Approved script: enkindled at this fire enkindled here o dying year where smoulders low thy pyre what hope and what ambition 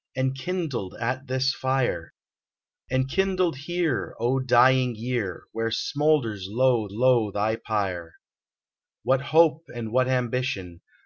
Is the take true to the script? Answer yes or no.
no